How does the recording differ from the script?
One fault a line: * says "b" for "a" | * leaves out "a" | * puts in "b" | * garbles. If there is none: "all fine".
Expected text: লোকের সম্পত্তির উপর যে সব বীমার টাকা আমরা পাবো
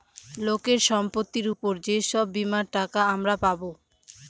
all fine